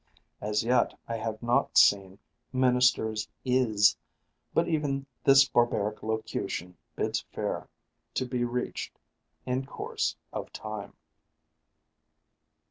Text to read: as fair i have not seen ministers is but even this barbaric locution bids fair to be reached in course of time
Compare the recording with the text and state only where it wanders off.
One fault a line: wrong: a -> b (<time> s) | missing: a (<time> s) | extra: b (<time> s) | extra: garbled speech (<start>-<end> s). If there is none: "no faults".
wrong: fair -> yet (0.6 s)